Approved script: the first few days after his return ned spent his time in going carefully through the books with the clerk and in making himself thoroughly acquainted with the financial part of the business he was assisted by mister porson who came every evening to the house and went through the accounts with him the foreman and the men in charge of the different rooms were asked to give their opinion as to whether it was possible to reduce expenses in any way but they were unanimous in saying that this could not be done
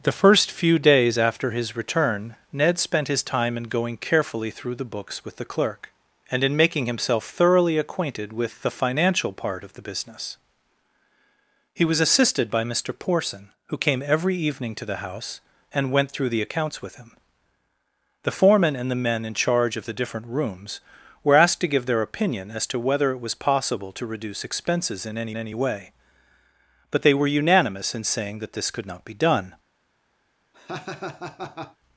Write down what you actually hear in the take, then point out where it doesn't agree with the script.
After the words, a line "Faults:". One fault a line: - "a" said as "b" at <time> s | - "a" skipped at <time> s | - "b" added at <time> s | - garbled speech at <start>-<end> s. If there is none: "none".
the first few days after his return ned spent his time in going carefully through the books with the clerk and in making himself thoroughly acquainted with the financial part of the business he was assisted by mister porson who came every evening to the house and went through the accounts with him the foreman and the men in charge of the different rooms were asked to give their opinion as to whether it was possible to reduce expenses in any any way but they were unanimous in saying that this could not be done
Faults:
- "any" added at 25.4 s